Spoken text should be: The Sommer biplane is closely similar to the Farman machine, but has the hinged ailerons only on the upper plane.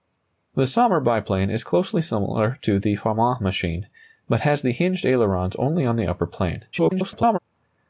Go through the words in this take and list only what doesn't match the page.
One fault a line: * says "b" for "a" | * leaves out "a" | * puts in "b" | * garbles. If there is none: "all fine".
* garbles